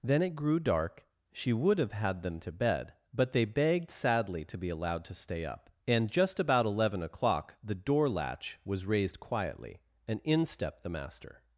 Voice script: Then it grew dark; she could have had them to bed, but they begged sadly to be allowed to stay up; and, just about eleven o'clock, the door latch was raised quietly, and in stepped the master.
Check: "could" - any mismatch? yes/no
yes